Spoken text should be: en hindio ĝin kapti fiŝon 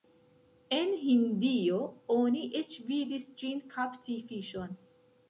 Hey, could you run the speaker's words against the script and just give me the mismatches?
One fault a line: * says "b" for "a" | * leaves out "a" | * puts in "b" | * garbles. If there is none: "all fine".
* puts in "oni eĉ vidis"